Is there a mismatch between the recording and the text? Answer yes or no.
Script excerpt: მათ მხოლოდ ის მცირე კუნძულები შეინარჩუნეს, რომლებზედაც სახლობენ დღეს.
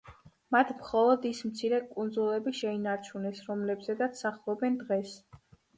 no